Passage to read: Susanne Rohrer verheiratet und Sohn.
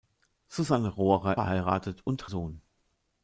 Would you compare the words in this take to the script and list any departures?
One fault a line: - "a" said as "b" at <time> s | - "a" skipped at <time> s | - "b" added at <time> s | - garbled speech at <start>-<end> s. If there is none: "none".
none